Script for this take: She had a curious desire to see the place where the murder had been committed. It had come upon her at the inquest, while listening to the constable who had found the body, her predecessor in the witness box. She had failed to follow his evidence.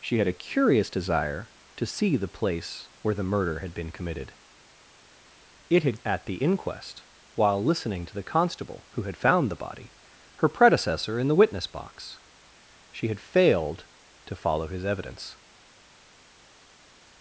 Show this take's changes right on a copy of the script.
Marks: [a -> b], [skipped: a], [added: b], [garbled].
She had a curious desire to see the place where the murder had been committed. It had [skipped: come upon her] at the inquest, while listening to the constable who had found the body, her predecessor in the witness box. She had failed to follow his evidence.